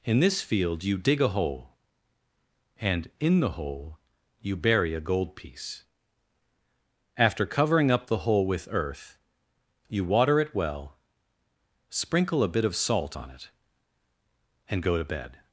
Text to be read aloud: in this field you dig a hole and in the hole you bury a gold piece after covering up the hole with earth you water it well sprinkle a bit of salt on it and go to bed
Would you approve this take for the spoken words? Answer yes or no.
yes